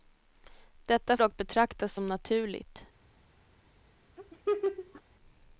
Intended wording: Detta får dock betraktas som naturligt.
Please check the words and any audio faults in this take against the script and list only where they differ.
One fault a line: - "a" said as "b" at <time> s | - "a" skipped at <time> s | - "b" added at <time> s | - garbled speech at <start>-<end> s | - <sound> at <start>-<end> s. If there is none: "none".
- "får" skipped at 1.2 s
- laugh at 4.2-5.0 s